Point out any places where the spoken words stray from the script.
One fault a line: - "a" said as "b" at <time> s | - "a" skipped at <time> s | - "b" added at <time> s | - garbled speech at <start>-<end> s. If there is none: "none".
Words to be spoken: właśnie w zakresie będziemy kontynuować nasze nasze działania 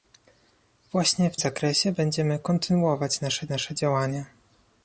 none